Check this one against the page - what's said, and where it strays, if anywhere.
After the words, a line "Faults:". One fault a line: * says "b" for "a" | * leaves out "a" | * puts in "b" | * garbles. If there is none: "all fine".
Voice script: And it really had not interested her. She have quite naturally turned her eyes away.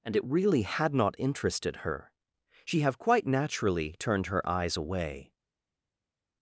And it really had not interested her. She have quite naturally turned her eyes away.
Faults:
all fine